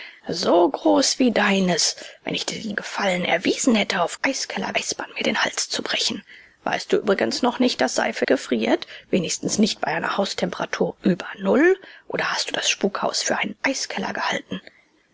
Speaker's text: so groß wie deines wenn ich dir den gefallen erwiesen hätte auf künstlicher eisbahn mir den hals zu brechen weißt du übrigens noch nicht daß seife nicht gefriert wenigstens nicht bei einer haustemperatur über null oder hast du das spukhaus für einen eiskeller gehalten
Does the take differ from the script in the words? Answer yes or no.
yes